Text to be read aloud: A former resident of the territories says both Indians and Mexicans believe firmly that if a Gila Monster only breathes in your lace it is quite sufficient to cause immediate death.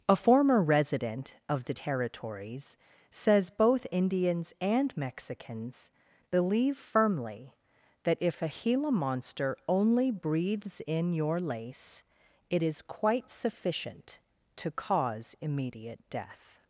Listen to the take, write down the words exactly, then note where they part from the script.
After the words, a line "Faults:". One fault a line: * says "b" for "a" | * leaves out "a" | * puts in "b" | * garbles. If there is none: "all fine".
A former resident of the territories says both Indians and Mexicans believe firmly that if a Gila Monster only breathes in your lace it is quite sufficient to cause immediate death.
Faults:
all fine